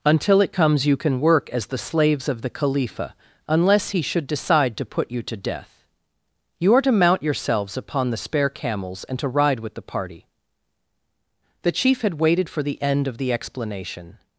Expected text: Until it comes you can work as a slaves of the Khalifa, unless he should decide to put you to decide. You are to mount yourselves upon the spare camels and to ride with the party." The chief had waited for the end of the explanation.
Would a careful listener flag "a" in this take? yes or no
yes